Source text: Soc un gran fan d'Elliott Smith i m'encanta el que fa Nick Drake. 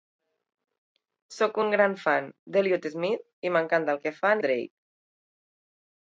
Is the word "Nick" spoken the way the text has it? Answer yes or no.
no